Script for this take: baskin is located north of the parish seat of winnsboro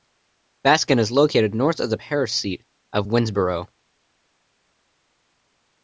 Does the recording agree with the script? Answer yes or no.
yes